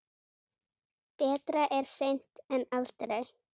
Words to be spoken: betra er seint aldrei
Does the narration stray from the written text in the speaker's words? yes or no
yes